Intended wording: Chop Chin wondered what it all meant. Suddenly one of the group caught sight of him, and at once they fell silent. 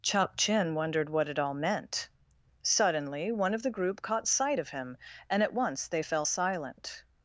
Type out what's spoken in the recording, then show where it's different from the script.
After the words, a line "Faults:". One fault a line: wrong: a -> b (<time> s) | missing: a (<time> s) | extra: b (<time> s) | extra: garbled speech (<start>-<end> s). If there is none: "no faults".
Chop Chin wondered what it all meant. Suddenly one of the group caught sight of him, and at once they fell silent.
Faults:
no faults